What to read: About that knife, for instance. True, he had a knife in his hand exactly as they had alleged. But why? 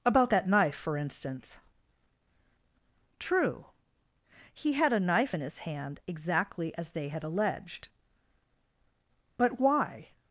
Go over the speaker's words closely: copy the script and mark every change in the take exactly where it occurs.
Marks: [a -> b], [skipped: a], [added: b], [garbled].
About that knife, for instance. True, he had a knife in his hand exactly as they had alleged. But why?